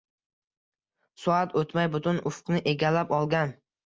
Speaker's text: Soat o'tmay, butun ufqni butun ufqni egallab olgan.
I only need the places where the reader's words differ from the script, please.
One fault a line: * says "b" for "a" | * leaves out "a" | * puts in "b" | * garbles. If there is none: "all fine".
* leaves out "butun ufqni"